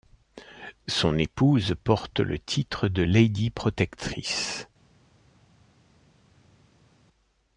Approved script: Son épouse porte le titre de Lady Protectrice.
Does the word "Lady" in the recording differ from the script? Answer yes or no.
no